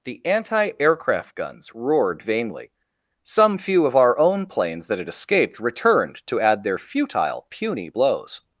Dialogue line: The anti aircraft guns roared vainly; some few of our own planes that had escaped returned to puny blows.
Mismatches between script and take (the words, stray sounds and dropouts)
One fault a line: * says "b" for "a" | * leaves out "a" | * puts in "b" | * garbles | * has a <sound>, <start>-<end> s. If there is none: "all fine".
* puts in "add their futile"